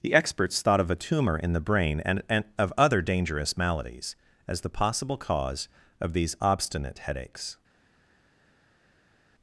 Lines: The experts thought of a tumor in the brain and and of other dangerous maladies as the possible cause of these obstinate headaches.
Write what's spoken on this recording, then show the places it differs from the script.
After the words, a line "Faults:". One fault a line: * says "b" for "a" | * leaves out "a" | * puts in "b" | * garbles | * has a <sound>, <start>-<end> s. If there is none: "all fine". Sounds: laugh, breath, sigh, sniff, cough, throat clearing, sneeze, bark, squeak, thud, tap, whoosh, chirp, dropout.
The experts thought of a tumor in the brain and and of other dangerous maladies as the possible cause of these obstinate headaches.
Faults:
all fine